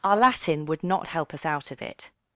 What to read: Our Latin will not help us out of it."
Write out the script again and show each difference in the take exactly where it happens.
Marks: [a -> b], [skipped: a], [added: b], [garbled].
Our Latin [will -> would] not help us out of it."